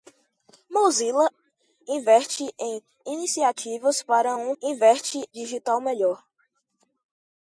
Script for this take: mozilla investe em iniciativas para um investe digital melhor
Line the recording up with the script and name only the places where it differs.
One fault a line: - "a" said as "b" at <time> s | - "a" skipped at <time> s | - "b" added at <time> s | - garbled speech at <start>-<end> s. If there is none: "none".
none